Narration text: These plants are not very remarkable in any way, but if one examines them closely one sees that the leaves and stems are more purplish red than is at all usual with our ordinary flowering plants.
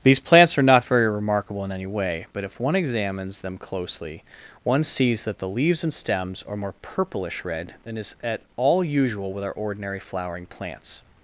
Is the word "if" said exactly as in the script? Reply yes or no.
yes